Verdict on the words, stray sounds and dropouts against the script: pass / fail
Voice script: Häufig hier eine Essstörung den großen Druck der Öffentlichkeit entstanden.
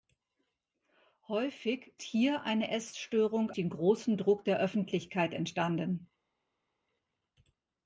pass